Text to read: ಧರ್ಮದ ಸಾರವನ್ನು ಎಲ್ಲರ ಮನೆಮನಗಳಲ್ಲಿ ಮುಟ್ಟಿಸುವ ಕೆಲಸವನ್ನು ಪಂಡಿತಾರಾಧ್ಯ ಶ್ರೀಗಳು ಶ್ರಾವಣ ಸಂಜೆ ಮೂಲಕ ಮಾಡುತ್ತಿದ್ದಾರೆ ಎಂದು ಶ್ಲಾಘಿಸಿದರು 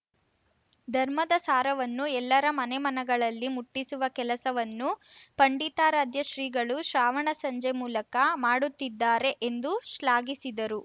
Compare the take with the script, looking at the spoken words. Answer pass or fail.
pass